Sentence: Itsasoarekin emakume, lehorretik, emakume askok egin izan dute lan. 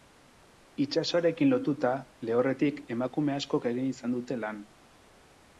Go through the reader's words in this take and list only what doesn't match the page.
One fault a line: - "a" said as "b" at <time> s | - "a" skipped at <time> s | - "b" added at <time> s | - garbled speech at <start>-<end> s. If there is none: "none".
- "emakume" said as "lotuta" at 1.5 s